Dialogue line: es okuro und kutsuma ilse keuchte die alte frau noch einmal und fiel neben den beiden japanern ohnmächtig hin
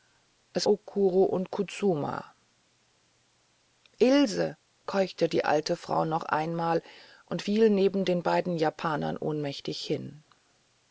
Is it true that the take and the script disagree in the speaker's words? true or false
false